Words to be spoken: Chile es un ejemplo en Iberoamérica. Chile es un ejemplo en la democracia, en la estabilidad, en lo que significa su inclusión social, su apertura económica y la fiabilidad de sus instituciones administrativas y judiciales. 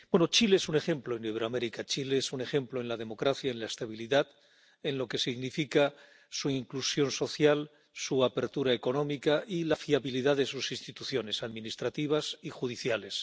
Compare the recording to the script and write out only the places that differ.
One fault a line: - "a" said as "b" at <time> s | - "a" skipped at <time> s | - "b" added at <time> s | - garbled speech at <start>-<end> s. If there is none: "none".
none